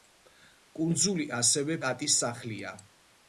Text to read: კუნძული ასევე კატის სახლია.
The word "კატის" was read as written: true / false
true